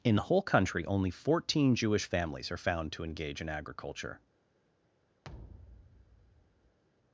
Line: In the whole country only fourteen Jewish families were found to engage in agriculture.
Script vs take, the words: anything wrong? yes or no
yes